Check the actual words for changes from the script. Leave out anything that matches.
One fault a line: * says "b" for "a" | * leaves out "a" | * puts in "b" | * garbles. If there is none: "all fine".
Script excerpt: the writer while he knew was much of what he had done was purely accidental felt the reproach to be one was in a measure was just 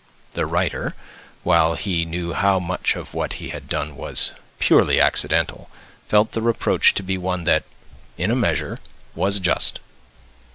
* says "how" for "was"
* says "that" for "was"